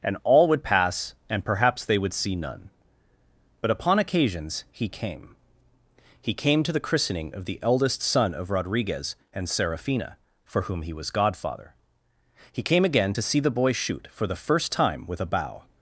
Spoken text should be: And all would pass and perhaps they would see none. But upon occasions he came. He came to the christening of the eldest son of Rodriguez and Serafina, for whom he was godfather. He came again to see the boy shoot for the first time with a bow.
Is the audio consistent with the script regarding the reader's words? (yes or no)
yes